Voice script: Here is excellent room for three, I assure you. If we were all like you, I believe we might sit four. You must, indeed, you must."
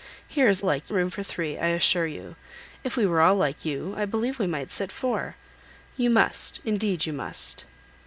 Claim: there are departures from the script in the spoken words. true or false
true